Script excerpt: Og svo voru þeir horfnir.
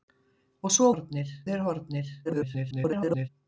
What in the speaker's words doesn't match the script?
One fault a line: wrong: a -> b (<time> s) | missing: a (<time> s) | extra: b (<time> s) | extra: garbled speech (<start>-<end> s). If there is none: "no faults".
wrong: voru -> horfnir (0.9 s)
extra: garbled speech (2.2-3.3 s)